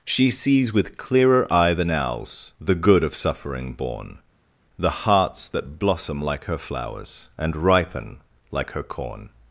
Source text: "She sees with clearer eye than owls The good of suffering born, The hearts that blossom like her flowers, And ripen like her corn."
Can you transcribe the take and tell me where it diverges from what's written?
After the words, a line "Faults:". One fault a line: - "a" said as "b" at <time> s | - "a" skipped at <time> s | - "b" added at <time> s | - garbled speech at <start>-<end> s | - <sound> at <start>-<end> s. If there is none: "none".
"She sees with clearer eye than owls The good of suffering born, The hearts that blossom like her flowers, And ripen like her corn."
Faults:
none